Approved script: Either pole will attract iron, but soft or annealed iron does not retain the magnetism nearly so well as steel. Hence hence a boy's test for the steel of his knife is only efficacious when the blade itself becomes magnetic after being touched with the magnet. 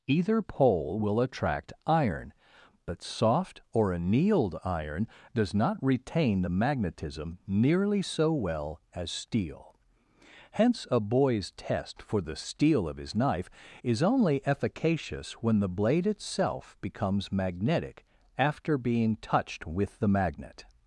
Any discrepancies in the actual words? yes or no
yes